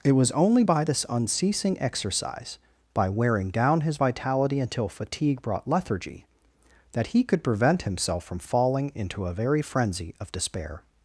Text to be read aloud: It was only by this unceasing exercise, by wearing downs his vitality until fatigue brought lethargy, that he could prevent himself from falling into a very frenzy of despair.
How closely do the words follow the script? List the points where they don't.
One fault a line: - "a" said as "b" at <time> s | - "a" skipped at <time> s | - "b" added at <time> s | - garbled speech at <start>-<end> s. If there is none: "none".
- "downs" said as "down" at 3.5 s